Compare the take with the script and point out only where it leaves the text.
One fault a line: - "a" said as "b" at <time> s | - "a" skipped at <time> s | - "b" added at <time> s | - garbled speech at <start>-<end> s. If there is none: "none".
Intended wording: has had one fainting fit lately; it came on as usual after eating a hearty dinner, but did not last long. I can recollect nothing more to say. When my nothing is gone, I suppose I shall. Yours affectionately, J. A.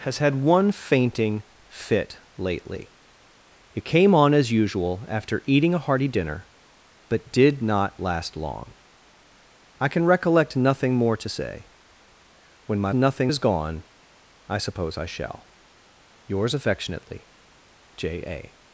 none